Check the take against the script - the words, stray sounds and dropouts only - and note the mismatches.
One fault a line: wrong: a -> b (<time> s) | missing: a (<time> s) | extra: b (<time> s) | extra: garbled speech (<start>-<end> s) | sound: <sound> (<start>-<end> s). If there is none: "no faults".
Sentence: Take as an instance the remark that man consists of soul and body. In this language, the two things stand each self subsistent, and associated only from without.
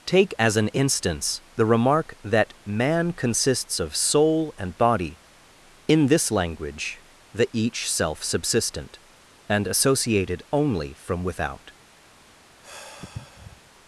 missing: two things stand (7.5 s)
sound: sigh (12.6-13.6 s)